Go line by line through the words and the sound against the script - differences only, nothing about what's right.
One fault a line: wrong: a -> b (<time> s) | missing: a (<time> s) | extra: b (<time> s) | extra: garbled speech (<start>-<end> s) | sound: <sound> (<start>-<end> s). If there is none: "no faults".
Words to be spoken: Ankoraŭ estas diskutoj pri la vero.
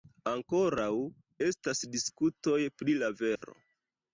sound: dropout (3.4-3.4 s)